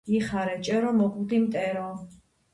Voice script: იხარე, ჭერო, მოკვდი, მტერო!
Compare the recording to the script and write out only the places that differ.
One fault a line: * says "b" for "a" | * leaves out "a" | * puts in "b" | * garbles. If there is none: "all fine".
all fine